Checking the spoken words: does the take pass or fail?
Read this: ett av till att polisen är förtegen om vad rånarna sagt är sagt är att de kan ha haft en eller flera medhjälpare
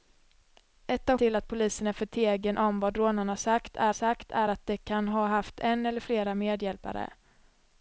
pass